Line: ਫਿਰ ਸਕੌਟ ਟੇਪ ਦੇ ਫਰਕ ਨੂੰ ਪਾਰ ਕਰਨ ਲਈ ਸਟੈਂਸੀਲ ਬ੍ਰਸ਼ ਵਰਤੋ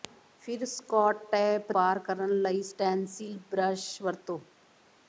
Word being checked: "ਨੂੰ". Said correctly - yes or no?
no